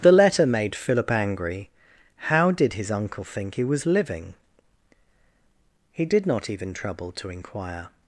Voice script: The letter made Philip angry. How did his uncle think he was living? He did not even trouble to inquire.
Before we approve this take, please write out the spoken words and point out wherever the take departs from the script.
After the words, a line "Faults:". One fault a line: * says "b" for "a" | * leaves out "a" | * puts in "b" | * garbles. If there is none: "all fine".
The letter made Philip angry. How did his uncle think he was living? He did not even trouble to inquire.
Faults:
all fine